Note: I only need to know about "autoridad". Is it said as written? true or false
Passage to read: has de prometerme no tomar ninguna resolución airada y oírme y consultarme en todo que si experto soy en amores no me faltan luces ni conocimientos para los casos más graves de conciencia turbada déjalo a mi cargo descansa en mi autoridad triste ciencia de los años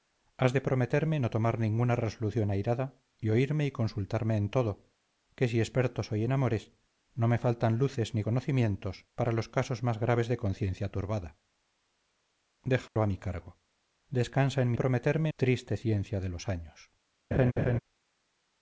false